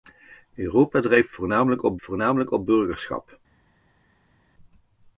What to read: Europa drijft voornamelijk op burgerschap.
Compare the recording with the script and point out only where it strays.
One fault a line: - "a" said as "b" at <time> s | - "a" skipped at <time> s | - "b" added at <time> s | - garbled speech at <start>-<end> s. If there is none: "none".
- "voornamelijk op" added at 2.0 s